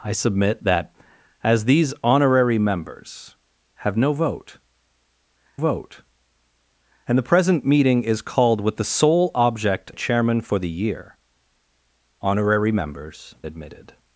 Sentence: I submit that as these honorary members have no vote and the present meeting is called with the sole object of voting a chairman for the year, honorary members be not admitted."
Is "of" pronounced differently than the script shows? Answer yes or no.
yes